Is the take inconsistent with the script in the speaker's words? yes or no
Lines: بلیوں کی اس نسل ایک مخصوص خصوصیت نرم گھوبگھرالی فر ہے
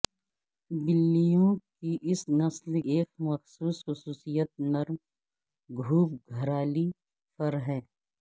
no